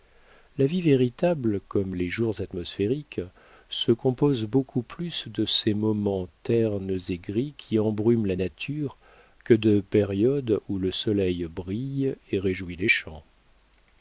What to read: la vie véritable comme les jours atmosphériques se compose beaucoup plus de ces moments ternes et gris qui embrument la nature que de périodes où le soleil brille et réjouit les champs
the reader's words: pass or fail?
pass